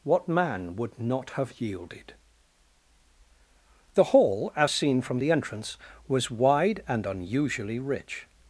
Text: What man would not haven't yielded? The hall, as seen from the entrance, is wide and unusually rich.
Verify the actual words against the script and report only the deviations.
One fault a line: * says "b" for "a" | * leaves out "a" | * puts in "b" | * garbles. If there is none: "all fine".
* says "have" for "haven't"
* says "was" for "is"